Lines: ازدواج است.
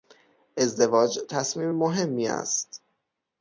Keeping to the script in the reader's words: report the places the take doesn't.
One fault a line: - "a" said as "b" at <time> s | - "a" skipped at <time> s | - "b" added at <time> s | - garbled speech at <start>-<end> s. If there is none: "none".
- "تصمیم مهمی" added at 1.3 s